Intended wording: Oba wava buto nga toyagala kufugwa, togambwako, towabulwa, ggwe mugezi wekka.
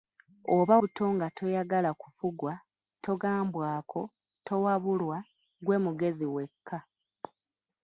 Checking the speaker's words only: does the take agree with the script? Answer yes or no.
no